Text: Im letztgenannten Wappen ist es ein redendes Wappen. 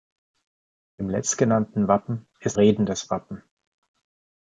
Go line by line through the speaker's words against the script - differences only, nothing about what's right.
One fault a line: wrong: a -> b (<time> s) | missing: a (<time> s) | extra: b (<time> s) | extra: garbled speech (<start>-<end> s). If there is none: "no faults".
missing: es ein (2.6 s)